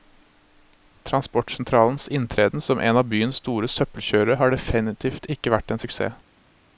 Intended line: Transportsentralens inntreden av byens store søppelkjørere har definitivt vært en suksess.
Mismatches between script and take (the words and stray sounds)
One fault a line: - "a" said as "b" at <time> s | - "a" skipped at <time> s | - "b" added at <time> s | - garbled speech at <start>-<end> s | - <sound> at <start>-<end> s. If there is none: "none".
- "som en" added at 2.6 s
- "ikke" added at 5.3 s